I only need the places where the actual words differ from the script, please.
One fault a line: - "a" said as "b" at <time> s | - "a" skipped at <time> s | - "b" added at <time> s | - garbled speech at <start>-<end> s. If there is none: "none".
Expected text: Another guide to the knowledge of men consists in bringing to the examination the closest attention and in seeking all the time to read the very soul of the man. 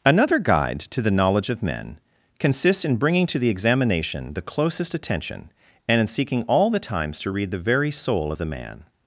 - "time" said as "times" at 6.8 s